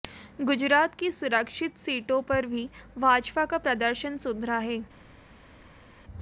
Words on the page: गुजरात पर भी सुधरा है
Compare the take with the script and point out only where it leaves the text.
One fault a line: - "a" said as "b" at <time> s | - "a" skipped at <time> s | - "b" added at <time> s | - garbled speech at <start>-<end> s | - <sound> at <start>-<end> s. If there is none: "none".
- "की सुरक्षित सीटों" added at 0.9 s
- "भाजपा का प्रदर्शन" added at 3.0 s